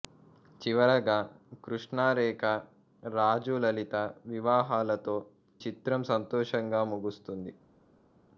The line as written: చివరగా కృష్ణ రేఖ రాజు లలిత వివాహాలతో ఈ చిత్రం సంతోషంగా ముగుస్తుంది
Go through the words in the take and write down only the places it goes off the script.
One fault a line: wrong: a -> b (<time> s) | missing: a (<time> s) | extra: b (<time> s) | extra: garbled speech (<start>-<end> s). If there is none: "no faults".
missing: ఈ (5.2 s)